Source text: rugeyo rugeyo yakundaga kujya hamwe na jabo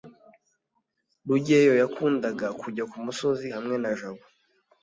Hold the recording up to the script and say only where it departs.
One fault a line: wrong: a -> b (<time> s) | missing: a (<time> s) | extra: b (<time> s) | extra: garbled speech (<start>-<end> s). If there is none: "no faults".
missing: rugeyo (1.7 s)
extra: kumusozi (2.9 s)